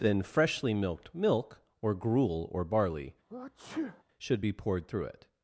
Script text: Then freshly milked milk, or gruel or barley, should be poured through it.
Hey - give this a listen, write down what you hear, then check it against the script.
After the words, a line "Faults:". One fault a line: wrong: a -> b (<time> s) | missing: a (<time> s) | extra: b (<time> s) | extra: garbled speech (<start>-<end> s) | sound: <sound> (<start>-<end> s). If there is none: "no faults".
Then freshly milked milk, or gruel or barley, should be poured through it.
Faults:
sound: sneeze (3.3-4.0 s)